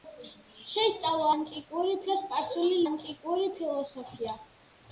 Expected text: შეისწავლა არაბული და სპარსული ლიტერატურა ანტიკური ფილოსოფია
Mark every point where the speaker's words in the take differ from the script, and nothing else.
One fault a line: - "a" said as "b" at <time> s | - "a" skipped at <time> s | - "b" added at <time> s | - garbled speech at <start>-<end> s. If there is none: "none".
- "არაბული" said as "ანტიკური" at 1.3 s
- "ლიტერატურა" skipped at 2.8 s